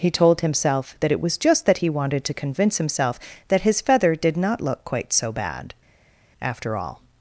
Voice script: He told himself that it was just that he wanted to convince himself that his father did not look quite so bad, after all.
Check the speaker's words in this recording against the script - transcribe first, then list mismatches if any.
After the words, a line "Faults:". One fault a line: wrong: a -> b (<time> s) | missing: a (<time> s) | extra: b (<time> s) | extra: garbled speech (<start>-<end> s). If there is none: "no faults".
He told himself that it was just that he wanted to convince himself that his feather did not look quite so bad, after all.
Faults:
wrong: father -> feather (3.8 s)